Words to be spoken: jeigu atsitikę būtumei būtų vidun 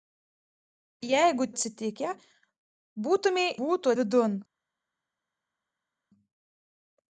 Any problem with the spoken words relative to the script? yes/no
no